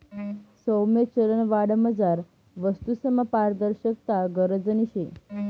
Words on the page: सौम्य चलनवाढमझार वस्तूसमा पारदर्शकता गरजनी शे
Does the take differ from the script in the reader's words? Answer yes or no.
no